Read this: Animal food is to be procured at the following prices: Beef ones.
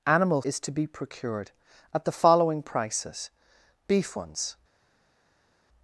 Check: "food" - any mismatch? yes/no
yes